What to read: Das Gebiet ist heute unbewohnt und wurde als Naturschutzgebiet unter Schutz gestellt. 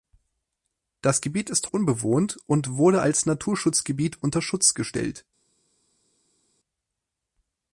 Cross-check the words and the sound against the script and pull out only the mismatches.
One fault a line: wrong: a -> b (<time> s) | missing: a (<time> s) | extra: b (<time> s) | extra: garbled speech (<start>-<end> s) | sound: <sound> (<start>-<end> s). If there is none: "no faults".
missing: heute (1.7 s)